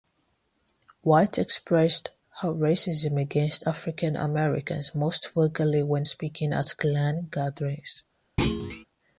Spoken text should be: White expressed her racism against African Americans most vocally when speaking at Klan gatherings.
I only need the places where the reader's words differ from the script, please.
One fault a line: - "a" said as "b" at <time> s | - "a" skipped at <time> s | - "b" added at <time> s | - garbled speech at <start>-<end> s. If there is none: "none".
none